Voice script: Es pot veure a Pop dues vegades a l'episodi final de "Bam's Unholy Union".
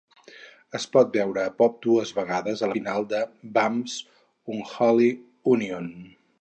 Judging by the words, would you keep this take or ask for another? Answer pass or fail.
fail